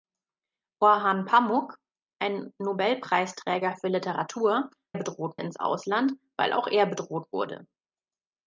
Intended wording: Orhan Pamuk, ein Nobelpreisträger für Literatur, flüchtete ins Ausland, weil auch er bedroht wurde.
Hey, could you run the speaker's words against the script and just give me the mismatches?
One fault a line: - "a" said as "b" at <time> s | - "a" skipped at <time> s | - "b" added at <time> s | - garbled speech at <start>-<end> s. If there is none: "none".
- "flüchtete" said as "bedroht" at 4.9 s